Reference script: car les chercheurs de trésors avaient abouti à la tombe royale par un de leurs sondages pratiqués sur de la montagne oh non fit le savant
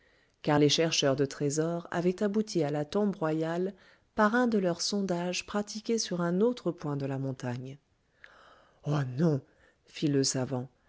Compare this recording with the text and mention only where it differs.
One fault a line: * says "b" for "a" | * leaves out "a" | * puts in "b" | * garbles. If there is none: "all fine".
* puts in "un autre point"